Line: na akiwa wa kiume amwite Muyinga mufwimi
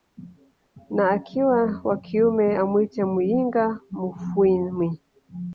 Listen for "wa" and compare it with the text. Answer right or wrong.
right